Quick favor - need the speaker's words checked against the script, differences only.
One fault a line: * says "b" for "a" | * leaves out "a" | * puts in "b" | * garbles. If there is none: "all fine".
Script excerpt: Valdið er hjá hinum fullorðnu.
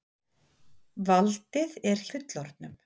* leaves out "hjá hinum"